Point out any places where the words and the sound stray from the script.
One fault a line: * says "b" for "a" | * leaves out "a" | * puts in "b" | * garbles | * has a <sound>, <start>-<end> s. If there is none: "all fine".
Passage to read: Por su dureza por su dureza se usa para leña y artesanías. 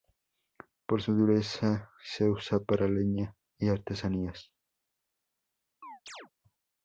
* leaves out "por su dureza"
* has a chirp, 5.8-6.3 s